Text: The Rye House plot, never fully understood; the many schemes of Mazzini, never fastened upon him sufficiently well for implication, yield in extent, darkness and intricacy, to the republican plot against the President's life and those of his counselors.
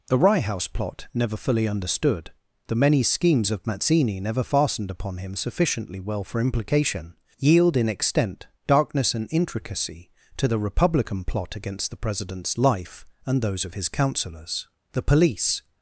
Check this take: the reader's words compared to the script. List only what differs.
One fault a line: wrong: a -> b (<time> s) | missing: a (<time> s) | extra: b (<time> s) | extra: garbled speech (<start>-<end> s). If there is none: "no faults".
extra: The police (14.9 s)